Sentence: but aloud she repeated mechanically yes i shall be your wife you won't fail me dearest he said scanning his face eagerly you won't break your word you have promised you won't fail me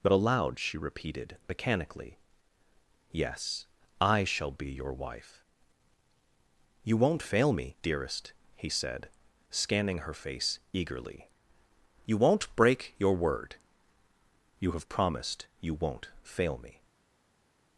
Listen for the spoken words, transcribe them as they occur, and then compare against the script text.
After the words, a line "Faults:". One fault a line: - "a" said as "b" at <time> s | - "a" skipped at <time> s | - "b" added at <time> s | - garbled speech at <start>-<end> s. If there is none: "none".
but aloud she repeated mechanically yes i shall be your wife you won't fail me dearest he said scanning her face eagerly you won't break your word you have promised you won't fail me
Faults:
- "his" said as "her" at 10.0 s